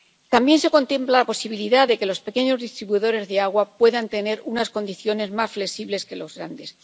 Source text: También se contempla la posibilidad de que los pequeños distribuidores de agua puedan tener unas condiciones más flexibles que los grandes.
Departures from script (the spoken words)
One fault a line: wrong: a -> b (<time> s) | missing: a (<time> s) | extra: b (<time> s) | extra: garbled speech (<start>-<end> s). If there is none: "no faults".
no faults